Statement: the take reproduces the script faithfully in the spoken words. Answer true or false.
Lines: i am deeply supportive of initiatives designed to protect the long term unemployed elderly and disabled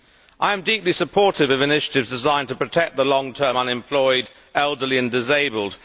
true